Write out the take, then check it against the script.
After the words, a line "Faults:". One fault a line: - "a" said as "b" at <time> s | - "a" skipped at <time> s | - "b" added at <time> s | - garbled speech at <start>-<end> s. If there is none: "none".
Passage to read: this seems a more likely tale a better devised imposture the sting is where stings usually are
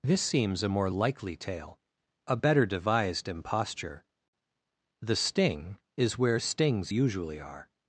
this seems a more likely tale a better devised imposture the sting is where stings usually are
Faults:
none